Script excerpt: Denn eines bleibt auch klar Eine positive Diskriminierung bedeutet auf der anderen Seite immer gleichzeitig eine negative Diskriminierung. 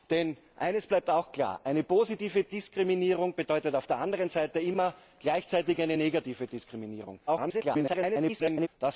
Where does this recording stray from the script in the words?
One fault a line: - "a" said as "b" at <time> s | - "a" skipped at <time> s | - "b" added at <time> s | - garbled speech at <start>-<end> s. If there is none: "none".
- garbled speech at 7.3-8.7 s